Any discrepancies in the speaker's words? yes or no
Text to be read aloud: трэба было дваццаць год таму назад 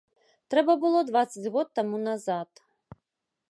no